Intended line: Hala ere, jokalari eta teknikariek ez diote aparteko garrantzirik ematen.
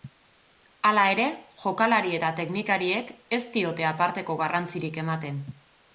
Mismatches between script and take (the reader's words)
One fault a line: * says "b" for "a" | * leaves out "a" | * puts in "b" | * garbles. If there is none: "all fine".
all fine